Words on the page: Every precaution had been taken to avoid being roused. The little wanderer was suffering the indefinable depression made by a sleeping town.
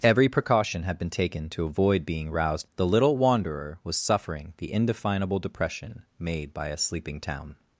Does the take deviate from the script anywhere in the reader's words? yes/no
no